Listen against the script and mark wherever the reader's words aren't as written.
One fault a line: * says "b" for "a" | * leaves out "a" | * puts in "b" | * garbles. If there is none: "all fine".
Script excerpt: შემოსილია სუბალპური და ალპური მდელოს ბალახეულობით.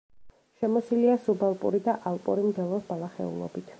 all fine